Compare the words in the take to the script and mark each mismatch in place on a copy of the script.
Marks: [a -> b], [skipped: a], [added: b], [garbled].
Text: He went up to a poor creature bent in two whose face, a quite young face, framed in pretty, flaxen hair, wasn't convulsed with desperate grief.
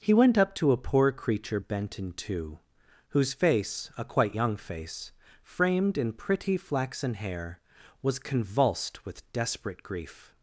He went up to a poor creature bent in two whose face, a quite young face, framed in pretty, flaxen hair, [wasn't -> was] convulsed with desperate grief.